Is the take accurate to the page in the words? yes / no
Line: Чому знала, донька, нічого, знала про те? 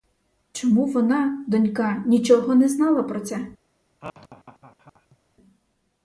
no